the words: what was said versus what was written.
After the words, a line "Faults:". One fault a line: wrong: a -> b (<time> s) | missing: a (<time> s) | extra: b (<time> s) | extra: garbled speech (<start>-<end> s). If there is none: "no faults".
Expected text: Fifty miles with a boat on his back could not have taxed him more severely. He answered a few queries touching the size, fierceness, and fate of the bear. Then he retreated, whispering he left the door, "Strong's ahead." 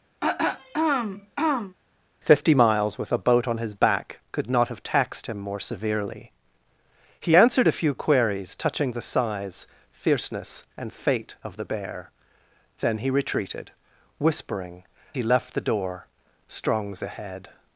Fifty miles with a boat on his back could not have taxed him more severely. He answered a few queries touching the size, fierceness, and fate of the bear. Then he retreated, whispering he left the door, "Strong's ahead."
Faults:
no faults